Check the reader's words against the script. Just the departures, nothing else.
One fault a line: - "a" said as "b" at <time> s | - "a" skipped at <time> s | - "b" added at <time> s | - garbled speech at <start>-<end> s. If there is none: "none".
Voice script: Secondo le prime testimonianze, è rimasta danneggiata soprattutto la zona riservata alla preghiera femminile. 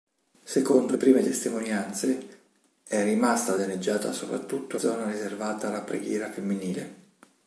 - "le" skipped at 0.9 s
- "la" skipped at 4.8 s